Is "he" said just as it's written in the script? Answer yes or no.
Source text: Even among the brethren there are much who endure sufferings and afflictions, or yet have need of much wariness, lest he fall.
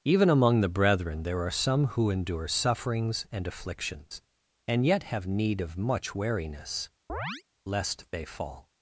no